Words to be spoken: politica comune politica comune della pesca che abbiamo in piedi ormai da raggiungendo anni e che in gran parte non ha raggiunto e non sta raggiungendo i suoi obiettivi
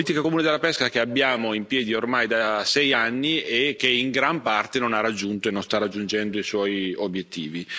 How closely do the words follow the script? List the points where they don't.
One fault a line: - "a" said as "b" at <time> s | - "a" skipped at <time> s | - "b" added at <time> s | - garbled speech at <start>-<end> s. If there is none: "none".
- "politica comune" skipped at 0.4 s
- "raggiungendo" said as "sei" at 2.6 s